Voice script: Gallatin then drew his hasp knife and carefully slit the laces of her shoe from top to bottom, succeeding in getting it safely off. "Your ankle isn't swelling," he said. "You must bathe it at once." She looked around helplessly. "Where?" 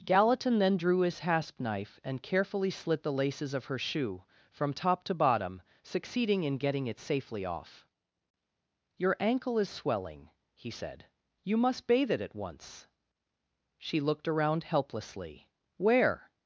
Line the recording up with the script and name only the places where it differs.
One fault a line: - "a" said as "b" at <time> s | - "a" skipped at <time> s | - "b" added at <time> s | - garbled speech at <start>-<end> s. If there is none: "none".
- "isn't" said as "is" at 9.6 s